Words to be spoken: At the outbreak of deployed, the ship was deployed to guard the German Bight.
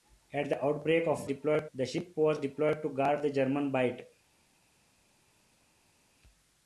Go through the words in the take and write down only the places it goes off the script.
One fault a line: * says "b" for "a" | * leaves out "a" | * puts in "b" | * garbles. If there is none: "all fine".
all fine